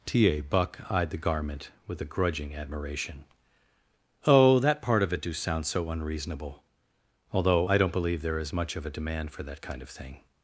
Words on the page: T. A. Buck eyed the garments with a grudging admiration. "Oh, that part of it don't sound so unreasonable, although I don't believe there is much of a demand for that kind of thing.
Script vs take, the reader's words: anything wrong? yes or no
yes